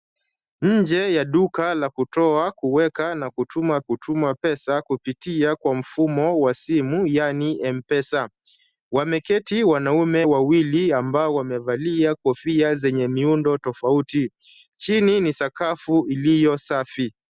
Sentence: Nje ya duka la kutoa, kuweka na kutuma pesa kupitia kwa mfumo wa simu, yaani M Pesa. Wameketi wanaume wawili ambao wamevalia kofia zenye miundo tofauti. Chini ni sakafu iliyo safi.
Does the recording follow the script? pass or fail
fail